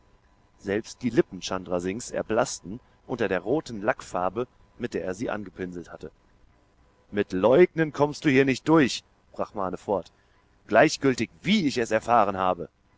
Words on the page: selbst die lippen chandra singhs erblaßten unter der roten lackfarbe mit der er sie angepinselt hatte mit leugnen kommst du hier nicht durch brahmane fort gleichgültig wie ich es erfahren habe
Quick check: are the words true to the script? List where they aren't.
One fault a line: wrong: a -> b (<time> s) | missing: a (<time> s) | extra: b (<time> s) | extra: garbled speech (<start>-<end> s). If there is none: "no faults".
no faults